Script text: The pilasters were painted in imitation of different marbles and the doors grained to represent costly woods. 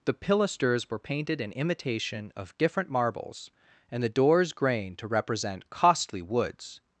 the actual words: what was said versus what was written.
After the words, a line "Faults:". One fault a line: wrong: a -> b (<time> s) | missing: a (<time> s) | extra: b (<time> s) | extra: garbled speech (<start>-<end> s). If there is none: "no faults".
The pilasters were painted in imitation of different marbles and the doors grained to represent costly woods.
Faults:
no faults